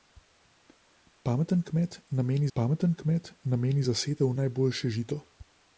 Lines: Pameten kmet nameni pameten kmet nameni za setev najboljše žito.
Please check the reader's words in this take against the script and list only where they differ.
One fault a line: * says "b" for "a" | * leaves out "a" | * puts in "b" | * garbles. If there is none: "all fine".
all fine